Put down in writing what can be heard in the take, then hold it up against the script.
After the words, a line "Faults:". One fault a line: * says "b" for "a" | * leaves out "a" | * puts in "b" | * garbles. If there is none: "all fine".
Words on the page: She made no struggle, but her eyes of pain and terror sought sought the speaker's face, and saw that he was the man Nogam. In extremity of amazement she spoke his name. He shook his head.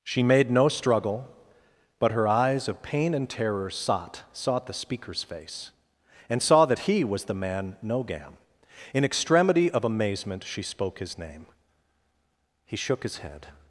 She made no struggle, but her eyes of pain and terror sought sought the speaker's face, and saw that he was the man Nogam. In extremity of amazement she spoke his name. He shook his head.
Faults:
all fine